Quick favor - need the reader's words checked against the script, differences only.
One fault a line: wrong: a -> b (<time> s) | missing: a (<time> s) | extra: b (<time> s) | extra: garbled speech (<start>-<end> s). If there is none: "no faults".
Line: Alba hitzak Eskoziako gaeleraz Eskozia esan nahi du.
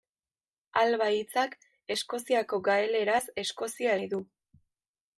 missing: esan (4.0 s)